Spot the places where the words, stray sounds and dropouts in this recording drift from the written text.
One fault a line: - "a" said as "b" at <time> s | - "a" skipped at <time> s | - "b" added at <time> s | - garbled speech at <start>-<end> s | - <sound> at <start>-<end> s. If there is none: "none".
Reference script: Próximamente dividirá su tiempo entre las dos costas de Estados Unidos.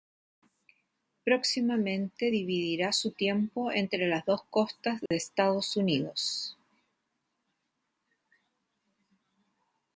- dropout at 5.1-5.1 s